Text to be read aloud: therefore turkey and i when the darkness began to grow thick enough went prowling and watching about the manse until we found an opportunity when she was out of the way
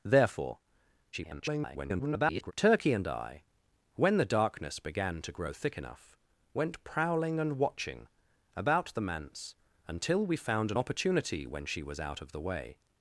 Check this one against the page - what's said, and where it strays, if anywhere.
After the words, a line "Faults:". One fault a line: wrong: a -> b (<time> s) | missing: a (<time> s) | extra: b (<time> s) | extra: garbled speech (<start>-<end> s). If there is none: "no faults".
therefore [garbled] turkey and i when the darkness began to grow thick enough went prowling and watching about the manse until we found an opportunity when she was out of the way
Faults:
extra: garbled speech (1.1-2.5 s)